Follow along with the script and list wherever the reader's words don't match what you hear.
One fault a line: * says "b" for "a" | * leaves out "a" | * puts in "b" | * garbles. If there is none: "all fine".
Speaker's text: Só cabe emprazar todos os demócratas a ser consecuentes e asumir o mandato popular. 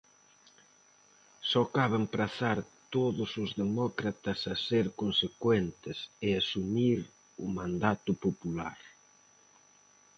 all fine